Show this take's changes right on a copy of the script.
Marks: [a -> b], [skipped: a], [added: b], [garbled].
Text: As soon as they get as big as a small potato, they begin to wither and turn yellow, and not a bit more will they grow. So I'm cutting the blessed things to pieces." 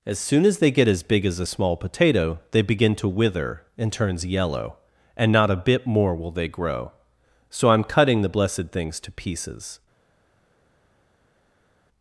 As soon as they get as big as a small potato, they begin to wither and [turn -> turns] yellow, and not a bit more will they grow. So I'm cutting the blessed things to pieces."